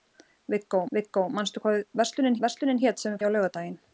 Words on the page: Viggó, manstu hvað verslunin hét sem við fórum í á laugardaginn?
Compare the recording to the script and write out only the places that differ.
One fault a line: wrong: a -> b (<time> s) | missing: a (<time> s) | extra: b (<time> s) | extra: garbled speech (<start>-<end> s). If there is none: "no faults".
extra: viggó (1.0 s)
extra: verslunin (2.4 s)
missing: fórum (3.2 s)